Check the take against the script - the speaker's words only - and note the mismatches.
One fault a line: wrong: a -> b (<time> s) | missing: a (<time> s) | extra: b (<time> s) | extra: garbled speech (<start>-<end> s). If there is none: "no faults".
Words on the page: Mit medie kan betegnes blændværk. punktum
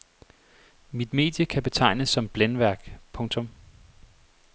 extra: som (2.1 s)